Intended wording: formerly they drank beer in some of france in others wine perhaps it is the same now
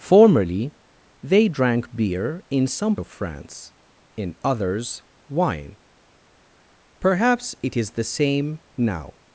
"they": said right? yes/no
yes